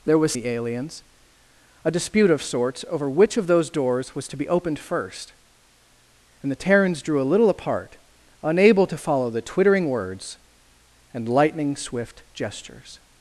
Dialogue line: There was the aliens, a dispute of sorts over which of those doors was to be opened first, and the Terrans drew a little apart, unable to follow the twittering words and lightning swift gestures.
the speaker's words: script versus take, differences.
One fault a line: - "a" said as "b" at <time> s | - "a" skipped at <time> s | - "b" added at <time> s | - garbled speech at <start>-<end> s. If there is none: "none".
none